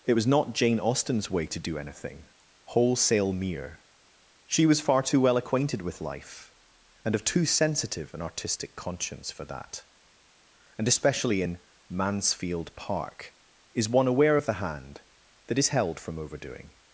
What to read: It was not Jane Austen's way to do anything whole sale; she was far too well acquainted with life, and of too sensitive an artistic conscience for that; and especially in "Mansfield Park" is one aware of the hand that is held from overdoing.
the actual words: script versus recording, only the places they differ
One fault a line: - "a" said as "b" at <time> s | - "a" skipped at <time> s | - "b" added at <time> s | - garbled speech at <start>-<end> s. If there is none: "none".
- "whole sale" said as "wholesale mere" at 2.7 s